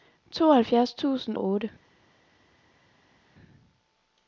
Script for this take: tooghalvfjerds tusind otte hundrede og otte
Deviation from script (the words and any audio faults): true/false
true